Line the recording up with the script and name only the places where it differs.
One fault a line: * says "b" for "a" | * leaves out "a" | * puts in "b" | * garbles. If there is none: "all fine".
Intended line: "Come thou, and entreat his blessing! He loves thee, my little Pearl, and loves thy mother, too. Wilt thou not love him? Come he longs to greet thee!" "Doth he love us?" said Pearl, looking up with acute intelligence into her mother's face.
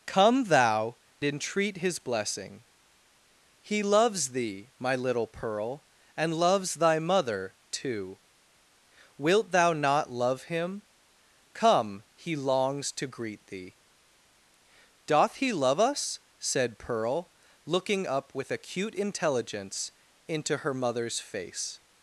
* leaves out "and"